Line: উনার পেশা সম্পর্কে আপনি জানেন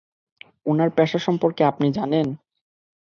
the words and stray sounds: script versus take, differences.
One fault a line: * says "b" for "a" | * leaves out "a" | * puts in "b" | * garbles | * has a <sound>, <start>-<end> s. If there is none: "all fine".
all fine